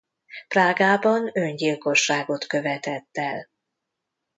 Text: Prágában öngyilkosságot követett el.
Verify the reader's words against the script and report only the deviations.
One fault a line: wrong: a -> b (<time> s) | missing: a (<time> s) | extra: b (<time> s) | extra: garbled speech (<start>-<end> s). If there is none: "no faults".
no faults